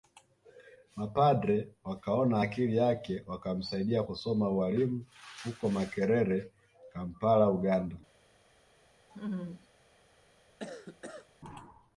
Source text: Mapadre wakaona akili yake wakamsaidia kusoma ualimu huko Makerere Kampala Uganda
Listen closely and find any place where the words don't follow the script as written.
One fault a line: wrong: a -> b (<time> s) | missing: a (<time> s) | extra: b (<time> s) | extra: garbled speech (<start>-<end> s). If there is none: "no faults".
no faults